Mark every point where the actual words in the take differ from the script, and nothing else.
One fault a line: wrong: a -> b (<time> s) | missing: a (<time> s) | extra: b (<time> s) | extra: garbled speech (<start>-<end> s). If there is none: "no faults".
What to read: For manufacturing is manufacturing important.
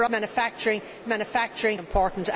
no faults